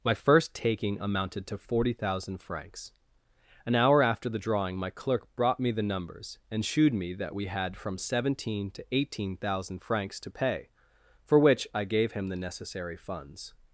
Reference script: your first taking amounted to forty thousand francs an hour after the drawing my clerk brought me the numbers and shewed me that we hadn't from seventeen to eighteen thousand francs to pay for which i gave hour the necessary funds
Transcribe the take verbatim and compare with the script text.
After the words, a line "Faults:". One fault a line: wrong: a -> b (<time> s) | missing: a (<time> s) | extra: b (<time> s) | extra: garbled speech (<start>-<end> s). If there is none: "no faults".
my first taking amounted to forty thousand francs an hour after the drawing my clerk brought me the numbers and shewed me that we had from seventeen to eighteen thousand francs to pay for which i gave him the necessary funds
Faults:
wrong: your -> my (0.0 s)
wrong: hadn't -> had (7.5 s)
wrong: hour -> him (12.1 s)